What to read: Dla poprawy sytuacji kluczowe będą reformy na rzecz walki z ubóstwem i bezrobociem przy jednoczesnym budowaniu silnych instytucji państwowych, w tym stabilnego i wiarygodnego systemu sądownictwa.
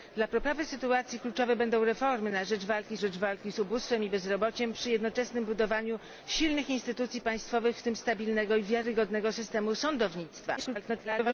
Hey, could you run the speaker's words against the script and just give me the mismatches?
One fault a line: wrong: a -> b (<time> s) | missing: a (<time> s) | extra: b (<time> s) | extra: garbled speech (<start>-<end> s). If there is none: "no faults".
extra: rzecz walki (3.0 s)
extra: garbled speech (10.6-11.3 s)